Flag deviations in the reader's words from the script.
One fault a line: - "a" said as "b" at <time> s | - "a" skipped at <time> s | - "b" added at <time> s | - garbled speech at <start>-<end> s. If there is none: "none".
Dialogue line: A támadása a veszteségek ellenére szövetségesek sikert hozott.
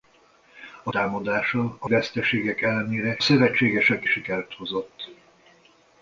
none